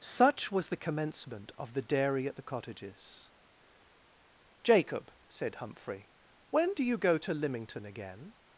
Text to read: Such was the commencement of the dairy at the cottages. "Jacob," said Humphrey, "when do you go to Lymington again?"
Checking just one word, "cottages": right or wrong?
right